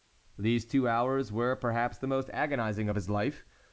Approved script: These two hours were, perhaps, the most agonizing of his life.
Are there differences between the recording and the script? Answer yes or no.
no